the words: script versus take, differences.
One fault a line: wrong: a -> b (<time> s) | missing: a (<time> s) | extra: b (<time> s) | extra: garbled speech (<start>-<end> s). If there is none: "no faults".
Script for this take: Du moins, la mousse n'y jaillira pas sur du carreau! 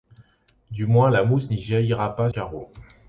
missing: sur du (2.3 s)